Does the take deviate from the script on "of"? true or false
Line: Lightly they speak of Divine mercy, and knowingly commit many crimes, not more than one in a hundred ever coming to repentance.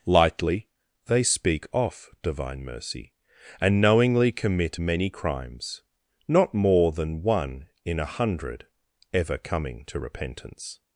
true